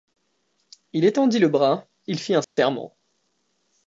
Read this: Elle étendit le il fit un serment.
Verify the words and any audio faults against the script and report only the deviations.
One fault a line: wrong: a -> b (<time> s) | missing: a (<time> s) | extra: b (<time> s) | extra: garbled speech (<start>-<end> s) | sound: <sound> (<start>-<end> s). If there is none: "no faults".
wrong: Elle -> Il (0.9 s)
extra: bras (1.5 s)
sound: dropout (2.4-2.6 s)